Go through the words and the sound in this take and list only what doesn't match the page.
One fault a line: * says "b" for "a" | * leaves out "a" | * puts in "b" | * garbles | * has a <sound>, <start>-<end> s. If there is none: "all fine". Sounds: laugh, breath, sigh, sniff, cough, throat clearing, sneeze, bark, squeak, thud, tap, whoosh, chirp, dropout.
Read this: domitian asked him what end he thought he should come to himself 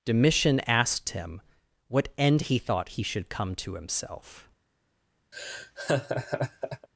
* has a laugh, 5.3-6.9 s